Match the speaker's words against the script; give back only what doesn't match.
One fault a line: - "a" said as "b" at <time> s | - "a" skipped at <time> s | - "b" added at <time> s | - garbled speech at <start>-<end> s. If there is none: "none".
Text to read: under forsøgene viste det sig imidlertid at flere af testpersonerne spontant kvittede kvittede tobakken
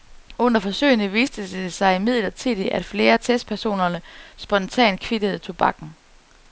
- "kvittede" skipped at 5.4 s